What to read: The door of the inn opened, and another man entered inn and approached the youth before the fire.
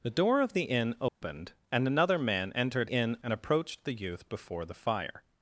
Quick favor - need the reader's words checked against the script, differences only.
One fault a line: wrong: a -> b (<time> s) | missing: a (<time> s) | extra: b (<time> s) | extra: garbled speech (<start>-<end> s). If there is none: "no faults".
no faults